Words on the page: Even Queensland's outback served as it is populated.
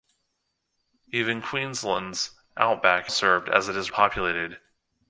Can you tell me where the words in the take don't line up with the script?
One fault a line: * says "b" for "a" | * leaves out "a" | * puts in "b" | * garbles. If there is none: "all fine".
all fine